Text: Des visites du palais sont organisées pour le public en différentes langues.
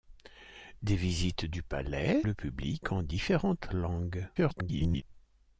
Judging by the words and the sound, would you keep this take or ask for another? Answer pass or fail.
fail